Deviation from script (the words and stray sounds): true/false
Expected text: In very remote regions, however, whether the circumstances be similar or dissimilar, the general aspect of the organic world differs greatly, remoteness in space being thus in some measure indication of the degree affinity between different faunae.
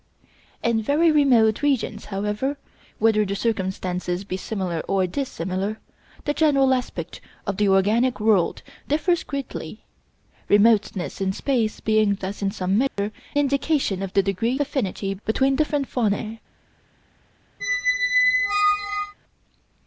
true